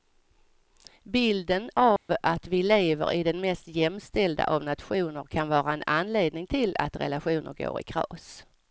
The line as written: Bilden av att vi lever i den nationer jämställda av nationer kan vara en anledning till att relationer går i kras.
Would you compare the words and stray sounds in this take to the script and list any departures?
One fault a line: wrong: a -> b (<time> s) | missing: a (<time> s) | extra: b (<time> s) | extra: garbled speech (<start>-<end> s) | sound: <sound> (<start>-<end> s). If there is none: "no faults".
sound: dropout (2.0-2.1 s)
wrong: nationer -> mest (3.4 s)